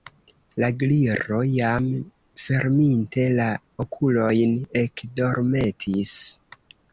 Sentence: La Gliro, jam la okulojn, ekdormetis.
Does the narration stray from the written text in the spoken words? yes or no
yes